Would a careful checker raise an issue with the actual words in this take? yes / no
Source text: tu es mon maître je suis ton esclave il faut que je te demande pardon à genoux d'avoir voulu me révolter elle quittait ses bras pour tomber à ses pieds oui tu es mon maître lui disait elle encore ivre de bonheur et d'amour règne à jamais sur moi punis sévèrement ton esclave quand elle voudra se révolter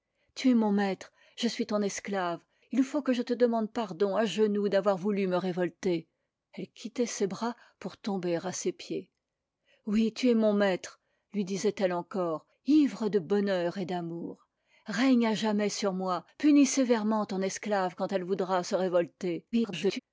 yes